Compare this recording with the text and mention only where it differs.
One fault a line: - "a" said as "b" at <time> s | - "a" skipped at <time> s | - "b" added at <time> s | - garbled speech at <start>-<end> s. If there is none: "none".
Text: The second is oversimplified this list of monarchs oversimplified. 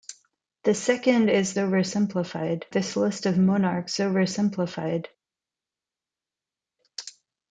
none